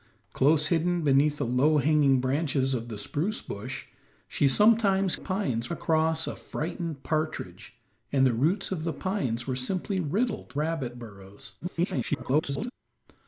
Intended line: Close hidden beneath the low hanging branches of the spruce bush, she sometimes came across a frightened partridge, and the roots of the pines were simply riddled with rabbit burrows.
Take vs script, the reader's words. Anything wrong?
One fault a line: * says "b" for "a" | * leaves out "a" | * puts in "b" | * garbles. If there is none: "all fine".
* says "pines" for "came"
* leaves out "with"
* garbles